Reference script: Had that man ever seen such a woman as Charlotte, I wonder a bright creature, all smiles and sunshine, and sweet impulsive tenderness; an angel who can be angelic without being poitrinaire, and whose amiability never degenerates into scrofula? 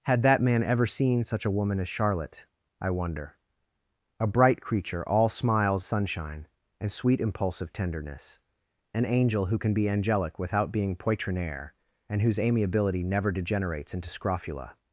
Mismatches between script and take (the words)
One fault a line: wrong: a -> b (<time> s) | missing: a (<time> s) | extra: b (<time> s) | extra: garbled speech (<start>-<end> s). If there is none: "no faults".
missing: and (5.8 s)